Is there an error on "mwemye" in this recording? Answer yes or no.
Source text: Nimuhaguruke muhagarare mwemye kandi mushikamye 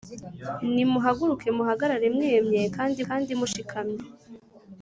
no